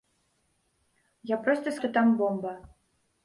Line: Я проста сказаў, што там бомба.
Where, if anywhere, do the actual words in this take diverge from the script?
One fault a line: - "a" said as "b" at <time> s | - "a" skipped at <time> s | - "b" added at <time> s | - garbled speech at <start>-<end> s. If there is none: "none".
- "сказаў" skipped at 1.8 s